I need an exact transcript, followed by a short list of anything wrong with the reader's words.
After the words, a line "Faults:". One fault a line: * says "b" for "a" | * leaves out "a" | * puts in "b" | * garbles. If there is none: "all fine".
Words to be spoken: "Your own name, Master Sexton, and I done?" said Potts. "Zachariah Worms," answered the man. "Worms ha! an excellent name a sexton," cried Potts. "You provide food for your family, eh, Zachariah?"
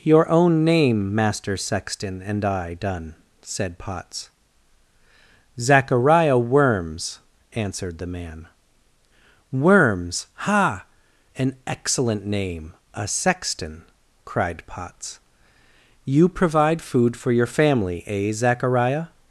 "Your own name, Master Sexton, and I done?" said Potts. "Zachariah Worms," answered the man. "Worms ha! an excellent name a sexton," cried Potts. "You provide food for your family, eh, Zachariah?"
Faults:
all fine